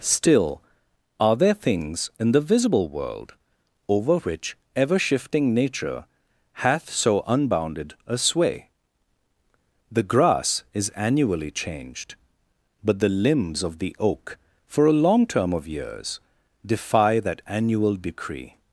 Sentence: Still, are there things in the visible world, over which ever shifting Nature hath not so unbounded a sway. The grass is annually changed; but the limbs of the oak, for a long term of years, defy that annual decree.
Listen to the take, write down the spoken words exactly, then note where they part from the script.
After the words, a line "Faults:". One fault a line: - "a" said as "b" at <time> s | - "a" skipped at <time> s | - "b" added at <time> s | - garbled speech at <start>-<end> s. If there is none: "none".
Still, are there things in the visible world, over which ever shifting Nature hath so unbounded a sway. The grass is annually changed; but the limbs of the oak, for a long term of years, defy that annual decree.
Faults:
- "not" skipped at 6.9 s